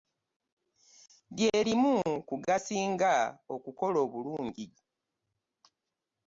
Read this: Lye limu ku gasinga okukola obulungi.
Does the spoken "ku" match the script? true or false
true